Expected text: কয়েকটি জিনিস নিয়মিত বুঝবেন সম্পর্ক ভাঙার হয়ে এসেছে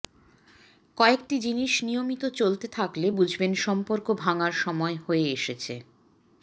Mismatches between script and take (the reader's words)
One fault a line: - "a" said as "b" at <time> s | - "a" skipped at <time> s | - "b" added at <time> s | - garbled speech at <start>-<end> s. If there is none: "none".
- "চলতে থাকলে" added at 2.4 s
- "সময়" added at 4.6 s